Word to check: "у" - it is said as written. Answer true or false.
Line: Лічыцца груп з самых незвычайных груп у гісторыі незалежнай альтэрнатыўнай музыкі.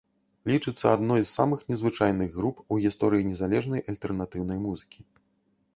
true